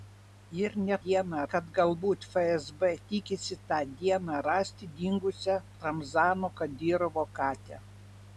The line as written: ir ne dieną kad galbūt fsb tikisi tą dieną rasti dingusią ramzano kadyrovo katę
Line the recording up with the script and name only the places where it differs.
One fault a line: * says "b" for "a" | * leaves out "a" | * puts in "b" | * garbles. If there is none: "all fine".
all fine